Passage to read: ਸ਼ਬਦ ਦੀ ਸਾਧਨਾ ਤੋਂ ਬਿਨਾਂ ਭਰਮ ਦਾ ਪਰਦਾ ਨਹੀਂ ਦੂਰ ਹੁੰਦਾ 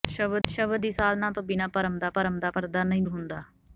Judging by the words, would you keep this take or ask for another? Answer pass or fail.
fail